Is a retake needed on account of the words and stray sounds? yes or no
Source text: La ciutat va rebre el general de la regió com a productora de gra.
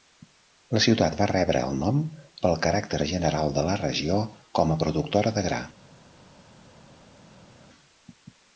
yes